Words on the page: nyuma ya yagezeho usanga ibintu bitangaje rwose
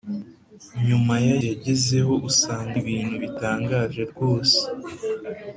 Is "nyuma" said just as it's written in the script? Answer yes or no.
yes